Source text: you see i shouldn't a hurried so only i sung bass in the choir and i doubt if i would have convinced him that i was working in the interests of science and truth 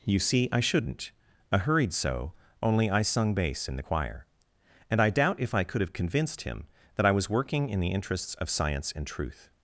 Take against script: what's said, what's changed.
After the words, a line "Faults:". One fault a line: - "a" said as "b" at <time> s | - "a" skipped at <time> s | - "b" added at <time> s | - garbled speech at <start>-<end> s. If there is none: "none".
you see i shouldn't a hurried so only i sung bass in the choir and i doubt if i could have convinced him that i was working in the interests of science and truth
Faults:
- "would" said as "could" at 5.6 s